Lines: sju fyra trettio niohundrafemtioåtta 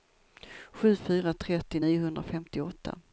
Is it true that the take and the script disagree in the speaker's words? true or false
false